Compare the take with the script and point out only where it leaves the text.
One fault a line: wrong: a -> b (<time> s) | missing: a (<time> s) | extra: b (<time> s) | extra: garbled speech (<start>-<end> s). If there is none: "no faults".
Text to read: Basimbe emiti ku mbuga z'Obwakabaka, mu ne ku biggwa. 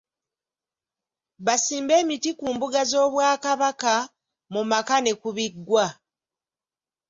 extra: maka (4.7 s)